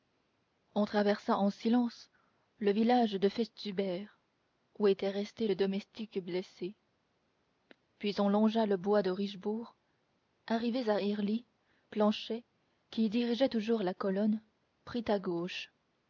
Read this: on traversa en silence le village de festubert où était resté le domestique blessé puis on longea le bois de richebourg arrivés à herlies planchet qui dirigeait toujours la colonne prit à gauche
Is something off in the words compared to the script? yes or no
no